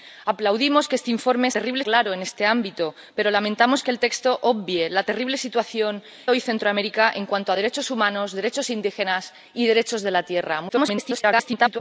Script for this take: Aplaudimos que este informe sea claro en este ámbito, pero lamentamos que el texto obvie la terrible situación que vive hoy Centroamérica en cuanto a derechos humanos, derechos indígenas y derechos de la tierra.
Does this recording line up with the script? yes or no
no